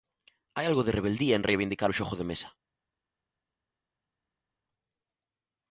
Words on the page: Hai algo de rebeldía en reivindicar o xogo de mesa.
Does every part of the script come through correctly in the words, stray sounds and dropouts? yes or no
yes